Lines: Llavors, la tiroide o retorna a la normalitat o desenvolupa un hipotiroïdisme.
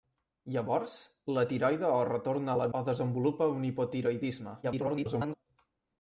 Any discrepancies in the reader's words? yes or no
yes